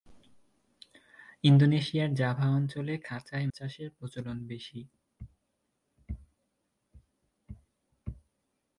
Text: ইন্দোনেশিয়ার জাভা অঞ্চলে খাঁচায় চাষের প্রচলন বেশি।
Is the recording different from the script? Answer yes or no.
no